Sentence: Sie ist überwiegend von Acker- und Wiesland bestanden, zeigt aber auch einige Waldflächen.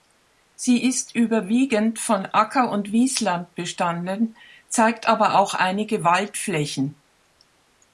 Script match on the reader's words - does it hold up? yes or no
yes